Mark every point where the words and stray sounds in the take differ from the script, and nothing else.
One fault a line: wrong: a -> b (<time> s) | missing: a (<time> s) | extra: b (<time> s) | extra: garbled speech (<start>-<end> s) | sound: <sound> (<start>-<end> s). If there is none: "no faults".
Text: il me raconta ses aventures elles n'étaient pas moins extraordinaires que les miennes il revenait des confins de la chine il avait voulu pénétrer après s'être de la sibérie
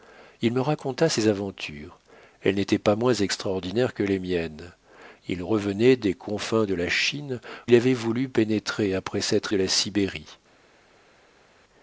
no faults